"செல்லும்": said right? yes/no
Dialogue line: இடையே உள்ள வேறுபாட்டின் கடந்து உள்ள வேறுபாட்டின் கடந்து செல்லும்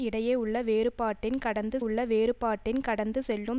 yes